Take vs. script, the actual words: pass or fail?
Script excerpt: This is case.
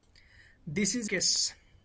pass